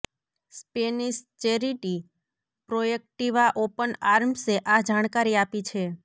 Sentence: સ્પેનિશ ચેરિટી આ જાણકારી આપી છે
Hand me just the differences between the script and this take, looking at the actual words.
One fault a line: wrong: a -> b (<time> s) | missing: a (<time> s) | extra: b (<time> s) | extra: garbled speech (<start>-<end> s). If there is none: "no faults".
extra: પ્રોએક્ટિવા ઓપન આર્મ્સે (2.7 s)